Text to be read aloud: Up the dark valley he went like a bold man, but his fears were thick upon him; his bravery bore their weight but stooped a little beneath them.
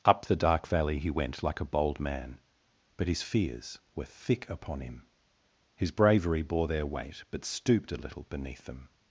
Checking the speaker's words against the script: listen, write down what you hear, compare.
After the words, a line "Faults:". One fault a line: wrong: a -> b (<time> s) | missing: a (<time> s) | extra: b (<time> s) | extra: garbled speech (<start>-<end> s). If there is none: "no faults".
Up the dark valley he went like a bold man, but his fears were thick upon him; his bravery bore their weight but stooped a little beneath them.
Faults:
no faults